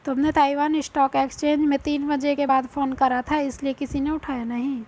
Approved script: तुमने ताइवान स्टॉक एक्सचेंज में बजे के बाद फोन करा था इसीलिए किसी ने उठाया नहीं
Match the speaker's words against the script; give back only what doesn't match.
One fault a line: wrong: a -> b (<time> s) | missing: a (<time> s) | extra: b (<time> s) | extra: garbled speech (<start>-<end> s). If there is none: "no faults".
extra: तीन (1.8 s)